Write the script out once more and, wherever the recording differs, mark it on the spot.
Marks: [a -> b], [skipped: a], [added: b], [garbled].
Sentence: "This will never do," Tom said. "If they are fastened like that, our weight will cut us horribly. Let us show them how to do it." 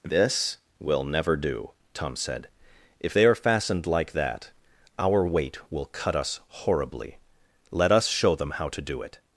"This will never do," Tom said. "If they are fastened like that, our weight will cut us horribly. Let us show them how to do it."